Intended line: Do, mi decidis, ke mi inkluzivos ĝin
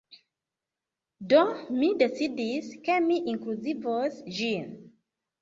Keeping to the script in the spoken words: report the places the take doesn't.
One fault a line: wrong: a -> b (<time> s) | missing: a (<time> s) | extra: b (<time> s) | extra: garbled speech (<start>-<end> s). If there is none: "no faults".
no faults